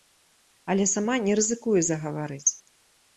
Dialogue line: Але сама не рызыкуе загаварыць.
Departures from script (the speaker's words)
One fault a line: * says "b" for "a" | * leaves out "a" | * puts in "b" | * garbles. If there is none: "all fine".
all fine